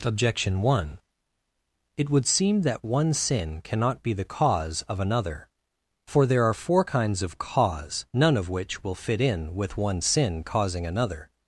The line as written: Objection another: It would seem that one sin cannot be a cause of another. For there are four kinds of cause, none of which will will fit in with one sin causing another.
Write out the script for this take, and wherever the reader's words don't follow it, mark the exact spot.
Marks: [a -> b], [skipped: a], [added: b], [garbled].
Objection [another: -> one] It would seem that one sin cannot be [a -> the] cause of another. For there are four kinds of cause, none of which will [skipped: will] fit in with one sin causing another.